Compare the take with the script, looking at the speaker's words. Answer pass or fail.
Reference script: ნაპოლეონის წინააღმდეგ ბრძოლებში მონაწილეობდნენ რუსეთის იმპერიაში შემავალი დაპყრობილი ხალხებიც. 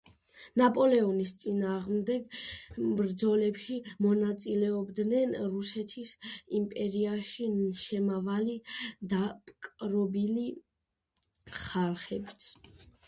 pass